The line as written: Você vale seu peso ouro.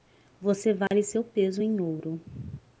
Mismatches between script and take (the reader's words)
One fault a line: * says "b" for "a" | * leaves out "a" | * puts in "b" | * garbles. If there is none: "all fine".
* puts in "em"